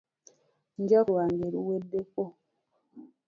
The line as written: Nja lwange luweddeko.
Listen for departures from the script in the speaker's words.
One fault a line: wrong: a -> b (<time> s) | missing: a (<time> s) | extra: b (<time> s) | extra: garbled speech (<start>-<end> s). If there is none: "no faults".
no faults